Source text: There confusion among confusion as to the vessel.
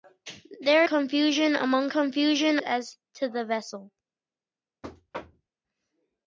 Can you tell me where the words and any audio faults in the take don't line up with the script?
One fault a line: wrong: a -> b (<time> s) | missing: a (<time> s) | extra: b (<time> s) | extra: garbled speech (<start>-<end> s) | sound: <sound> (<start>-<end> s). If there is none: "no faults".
sound: thud (4.8-5.5 s)